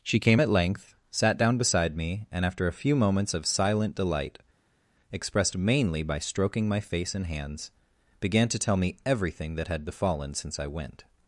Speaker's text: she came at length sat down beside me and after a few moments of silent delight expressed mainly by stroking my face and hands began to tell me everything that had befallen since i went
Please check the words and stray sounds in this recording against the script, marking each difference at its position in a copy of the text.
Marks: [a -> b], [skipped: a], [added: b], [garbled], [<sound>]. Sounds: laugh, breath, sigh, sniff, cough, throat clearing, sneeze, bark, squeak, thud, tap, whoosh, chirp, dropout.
she came at length sat down beside me and after a few moments of silent delight expressed mainly by stroking my face and hands began to tell me everything that had befallen since i went